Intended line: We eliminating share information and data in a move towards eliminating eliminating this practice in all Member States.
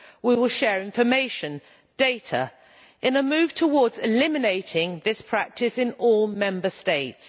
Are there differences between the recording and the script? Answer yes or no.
yes